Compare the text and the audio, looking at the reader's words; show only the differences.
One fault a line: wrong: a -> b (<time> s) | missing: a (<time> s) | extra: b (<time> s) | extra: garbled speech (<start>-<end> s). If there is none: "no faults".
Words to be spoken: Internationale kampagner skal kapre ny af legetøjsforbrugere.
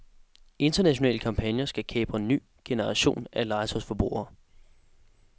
extra: generation (2.6 s)